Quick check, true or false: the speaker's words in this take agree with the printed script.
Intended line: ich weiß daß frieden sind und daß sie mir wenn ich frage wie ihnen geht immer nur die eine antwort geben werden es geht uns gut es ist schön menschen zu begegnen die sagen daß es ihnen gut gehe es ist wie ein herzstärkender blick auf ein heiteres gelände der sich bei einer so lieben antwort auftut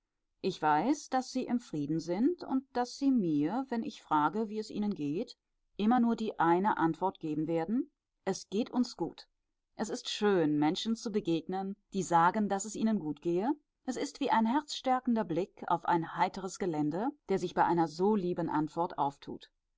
false